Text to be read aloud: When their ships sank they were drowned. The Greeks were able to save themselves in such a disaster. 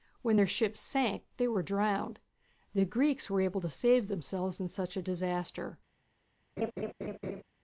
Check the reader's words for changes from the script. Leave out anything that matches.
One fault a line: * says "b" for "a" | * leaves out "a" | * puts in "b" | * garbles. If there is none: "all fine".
all fine